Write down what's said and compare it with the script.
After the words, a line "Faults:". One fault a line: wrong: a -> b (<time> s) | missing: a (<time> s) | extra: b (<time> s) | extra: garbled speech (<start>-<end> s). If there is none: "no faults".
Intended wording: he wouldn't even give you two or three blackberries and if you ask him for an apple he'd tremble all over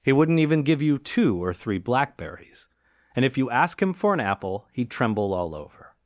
he wouldn't even give you two or three blackberries and if you ask him for an apple he'd tremble all over
Faults:
no faults